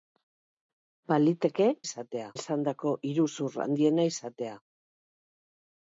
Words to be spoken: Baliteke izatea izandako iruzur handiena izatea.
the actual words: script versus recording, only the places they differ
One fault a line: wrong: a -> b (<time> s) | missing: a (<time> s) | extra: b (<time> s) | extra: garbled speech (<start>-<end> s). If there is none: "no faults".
no faults